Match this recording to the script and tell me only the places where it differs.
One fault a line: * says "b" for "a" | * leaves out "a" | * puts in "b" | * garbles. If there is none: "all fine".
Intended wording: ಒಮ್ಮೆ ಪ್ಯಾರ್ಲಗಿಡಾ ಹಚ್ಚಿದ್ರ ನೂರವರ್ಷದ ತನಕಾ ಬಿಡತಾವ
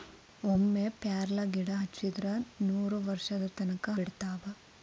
all fine